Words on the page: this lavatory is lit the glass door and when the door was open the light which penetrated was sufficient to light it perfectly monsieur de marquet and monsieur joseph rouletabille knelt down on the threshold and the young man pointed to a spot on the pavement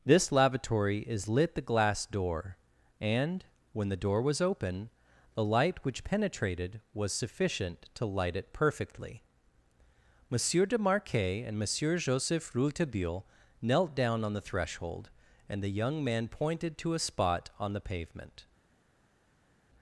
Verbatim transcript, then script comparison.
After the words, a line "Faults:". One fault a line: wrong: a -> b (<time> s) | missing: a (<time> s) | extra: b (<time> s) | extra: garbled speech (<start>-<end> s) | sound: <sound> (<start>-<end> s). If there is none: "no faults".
this lavatory is lit the glass door and when the door was open the light which penetrated was sufficient to light it perfectly monsieur de marquet and monsieur joseph rouletabille knelt down on the threshold and the young man pointed to a spot on the pavement
Faults:
no faults